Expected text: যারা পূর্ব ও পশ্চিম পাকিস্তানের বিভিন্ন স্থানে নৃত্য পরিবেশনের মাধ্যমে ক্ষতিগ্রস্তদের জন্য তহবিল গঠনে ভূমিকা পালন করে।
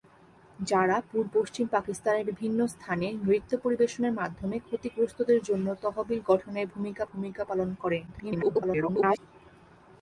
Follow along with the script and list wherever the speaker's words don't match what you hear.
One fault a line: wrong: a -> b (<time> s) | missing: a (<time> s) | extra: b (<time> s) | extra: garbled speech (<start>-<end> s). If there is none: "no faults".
missing: ও (1.3 s)
extra: ভূমিকা (7.1 s)
extra: garbled speech (8.1-9.2 s)